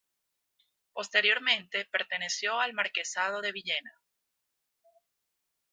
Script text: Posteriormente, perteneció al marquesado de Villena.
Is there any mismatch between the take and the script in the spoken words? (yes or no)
no